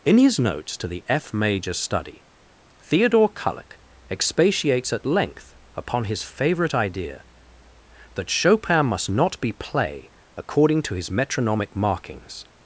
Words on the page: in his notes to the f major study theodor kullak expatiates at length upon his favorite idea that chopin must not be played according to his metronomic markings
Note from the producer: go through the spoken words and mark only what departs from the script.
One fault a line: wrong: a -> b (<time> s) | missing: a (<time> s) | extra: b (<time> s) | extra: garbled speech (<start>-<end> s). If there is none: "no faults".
wrong: played -> play (9.5 s)